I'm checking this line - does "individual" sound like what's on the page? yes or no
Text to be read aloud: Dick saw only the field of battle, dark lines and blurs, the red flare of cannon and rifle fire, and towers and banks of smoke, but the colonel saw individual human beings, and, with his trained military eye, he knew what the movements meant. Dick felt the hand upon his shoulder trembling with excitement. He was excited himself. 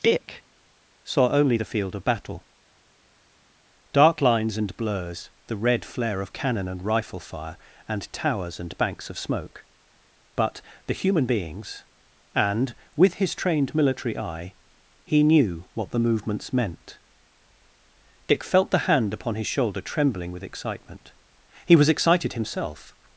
no